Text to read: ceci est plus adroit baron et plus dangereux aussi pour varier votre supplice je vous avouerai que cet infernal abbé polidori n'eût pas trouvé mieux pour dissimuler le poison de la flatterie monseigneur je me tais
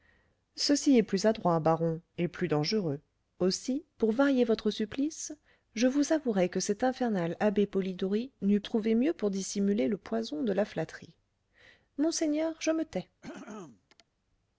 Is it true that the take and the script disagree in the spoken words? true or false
true